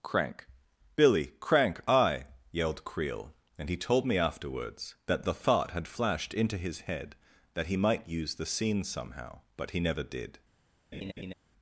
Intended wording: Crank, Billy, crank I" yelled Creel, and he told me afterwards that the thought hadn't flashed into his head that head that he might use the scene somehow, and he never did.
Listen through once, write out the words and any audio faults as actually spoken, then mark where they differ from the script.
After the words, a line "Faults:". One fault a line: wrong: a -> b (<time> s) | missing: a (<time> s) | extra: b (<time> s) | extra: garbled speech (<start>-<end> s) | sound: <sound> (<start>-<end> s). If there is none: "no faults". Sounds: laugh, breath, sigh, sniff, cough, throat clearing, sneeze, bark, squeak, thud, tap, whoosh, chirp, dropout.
Crank, Billy, crank I" yelled Creel, and he told me afterwards that the thought had flashed into his head that he might use the scene somehow, but he never did.
Faults:
wrong: hadn't -> had (5.7 s)
missing: head that (7.7 s)
wrong: and -> but (9.6 s)
sound: laugh (10.9-11.3 s)